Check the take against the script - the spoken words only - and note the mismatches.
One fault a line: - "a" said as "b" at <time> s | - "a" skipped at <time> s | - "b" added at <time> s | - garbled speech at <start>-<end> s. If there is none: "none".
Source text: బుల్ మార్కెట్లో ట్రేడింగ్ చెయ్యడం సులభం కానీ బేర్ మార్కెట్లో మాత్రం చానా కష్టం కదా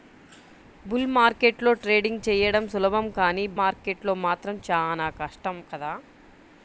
- "బేర్" skipped at 3.4 s